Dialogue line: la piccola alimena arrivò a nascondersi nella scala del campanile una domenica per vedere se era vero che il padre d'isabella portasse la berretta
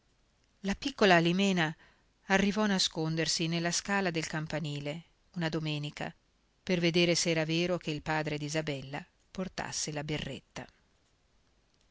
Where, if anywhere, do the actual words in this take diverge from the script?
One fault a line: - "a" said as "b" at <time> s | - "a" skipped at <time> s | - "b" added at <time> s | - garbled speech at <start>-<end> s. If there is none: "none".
none